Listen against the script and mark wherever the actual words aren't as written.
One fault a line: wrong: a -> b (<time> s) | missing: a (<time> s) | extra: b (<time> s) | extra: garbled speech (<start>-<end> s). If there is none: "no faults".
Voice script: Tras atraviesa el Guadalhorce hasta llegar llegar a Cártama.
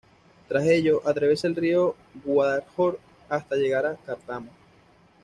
extra: ello (0.7 s)
extra: río (1.6 s)
missing: llegar (3.9 s)